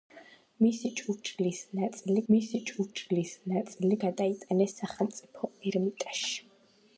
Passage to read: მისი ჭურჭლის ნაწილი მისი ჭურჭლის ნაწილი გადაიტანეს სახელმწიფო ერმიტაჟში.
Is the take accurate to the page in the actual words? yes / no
yes